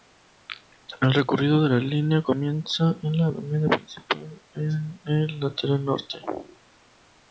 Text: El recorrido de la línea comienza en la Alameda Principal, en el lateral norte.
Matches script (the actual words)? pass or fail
pass